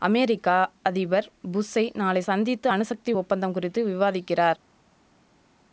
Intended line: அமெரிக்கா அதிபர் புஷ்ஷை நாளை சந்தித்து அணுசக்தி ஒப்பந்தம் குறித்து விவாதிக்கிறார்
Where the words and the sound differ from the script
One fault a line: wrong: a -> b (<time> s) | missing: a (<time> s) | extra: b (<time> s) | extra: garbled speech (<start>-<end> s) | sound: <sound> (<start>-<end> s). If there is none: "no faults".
no faults